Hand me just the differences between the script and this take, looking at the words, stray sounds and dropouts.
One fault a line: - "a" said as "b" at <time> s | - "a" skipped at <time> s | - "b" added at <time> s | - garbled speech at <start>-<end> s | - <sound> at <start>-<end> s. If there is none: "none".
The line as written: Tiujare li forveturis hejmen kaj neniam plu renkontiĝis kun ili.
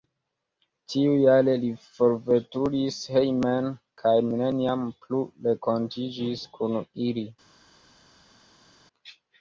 none